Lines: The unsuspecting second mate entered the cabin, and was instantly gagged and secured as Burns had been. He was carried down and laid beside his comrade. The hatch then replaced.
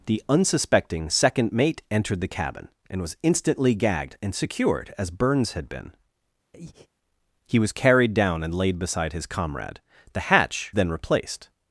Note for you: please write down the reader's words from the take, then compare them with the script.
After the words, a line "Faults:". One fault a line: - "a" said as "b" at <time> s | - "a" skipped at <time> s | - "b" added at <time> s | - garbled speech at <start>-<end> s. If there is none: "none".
The unsuspecting second mate entered the cabin, and was instantly gagged and secured as Burns had been. He was carried down and laid beside his comrade. The hatch then replaced.
Faults:
none